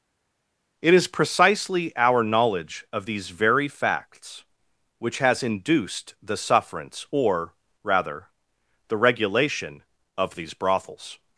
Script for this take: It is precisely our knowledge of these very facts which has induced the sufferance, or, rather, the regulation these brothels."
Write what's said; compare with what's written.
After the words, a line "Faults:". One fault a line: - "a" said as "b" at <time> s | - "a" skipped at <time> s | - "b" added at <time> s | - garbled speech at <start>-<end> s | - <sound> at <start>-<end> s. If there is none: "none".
It is precisely our knowledge of these very facts which has induced the sufferance, or, rather, the regulation of these brothels."
Faults:
- "of" added at 10.2 s